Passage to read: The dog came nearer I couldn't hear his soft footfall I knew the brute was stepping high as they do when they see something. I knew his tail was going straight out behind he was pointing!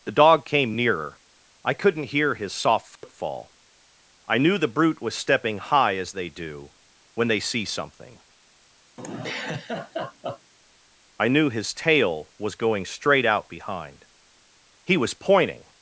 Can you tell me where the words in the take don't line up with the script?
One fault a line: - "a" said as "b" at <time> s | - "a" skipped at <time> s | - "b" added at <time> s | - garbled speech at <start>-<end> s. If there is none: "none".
none